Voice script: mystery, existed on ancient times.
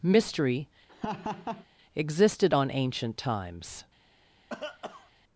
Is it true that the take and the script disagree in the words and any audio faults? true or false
true